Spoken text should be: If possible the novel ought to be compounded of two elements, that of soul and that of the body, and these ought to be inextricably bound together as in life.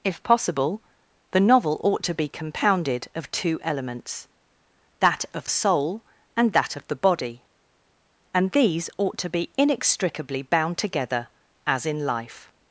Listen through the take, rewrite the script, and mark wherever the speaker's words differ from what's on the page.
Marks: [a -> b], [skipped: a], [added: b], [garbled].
If possible the novel ought to be compounded of two elements, that of soul and that of the body, and these ought to be inextricably bound together as in life.